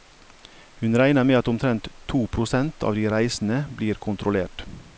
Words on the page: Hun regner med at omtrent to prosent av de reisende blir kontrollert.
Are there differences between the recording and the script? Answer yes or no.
no